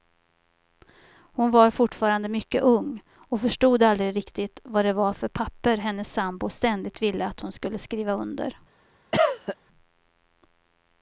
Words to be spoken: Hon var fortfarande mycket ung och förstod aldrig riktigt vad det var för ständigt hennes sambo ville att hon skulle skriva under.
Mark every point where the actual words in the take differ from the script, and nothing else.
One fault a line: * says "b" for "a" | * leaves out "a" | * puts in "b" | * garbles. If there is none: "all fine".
* says "papper" for "ständigt"
* puts in "ständigt"